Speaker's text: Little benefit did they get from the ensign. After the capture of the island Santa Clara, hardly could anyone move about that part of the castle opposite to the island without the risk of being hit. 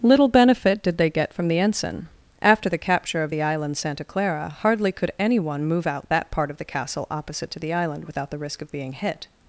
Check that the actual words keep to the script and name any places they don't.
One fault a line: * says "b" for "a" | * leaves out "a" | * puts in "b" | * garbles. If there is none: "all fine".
* says "out" for "about"